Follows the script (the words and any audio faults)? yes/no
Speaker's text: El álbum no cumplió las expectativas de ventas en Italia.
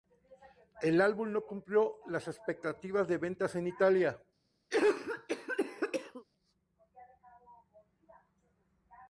no